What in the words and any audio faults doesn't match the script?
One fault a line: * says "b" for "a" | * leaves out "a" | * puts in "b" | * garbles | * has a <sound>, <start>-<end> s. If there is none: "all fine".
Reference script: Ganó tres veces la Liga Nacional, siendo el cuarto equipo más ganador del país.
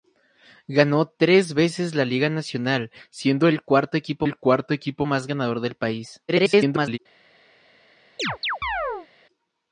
* puts in "el cuarto equipo"
* garbles
* has a chirp, 8.2-9.1 s